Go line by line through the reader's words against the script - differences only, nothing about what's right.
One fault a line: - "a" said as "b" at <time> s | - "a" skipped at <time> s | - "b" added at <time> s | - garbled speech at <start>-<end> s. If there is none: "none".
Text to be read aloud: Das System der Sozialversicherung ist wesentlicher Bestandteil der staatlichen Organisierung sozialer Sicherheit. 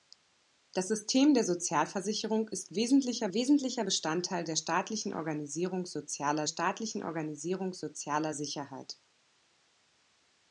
- "wesentlicher" added at 3.3 s
- "staatlichen Organisierung sozialer" added at 6.4 s